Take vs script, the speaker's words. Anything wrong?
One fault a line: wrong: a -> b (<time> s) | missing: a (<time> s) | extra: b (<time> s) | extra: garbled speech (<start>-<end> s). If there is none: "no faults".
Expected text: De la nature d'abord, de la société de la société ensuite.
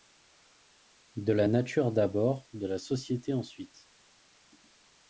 missing: de la société (3.3 s)